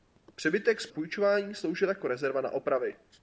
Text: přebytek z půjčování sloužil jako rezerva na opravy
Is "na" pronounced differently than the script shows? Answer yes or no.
no